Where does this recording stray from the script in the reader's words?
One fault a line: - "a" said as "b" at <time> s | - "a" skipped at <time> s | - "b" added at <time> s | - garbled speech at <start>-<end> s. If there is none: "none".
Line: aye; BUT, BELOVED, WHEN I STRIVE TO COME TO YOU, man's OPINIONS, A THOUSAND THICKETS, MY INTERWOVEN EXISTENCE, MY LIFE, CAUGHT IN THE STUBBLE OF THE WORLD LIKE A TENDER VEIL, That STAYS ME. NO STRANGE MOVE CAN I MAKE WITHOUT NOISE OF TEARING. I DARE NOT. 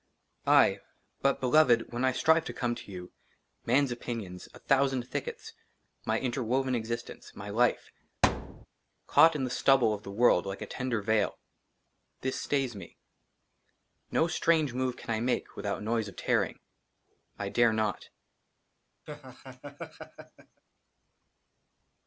- "That" said as "THIS" at 12.2 s